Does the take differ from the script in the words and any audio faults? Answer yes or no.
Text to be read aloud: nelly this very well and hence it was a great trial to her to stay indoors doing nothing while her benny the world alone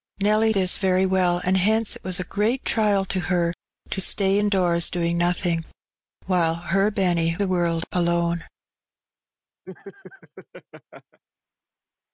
yes